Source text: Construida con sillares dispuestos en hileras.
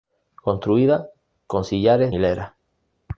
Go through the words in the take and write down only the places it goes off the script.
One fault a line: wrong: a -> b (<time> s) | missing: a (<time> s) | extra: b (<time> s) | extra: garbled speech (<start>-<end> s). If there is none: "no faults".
missing: dispuestos en (2.1 s)